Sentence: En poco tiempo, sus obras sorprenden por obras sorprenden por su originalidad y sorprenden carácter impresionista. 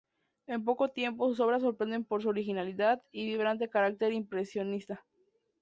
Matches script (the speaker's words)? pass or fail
fail